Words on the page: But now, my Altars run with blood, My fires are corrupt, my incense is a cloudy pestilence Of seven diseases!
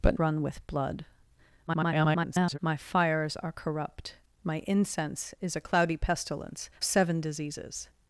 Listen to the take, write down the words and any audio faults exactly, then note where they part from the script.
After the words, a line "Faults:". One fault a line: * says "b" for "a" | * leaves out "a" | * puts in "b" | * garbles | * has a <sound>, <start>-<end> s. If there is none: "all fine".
But run with blood, [garbled] My fires are corrupt, my incense is a cloudy pestilence Seven diseases!
Faults:
* leaves out "now my Altars"
* garbles
* leaves out "Of"